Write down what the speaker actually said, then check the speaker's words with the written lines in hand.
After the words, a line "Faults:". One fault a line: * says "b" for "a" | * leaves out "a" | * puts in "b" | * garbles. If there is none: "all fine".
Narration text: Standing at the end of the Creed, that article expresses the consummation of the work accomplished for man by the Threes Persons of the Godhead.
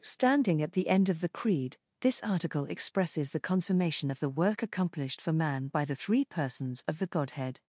Standing at the end of the Creed, this article expresses the consummation of the work accomplished for man by the Three Persons of the Godhead.
Faults:
* says "this" for "that"
* says "Three" for "Threes"